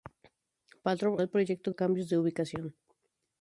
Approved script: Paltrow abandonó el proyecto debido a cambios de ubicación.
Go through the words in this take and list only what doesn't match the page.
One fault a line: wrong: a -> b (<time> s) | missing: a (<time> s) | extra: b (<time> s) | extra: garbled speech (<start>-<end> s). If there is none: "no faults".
missing: abandonó (1.2 s)
missing: debido (1.7 s)